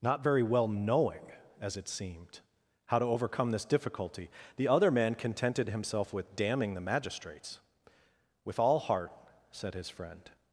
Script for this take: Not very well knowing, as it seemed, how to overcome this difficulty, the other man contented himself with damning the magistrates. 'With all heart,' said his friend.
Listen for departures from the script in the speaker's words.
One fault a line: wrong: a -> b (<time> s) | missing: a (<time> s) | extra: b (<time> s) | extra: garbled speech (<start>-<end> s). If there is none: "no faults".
no faults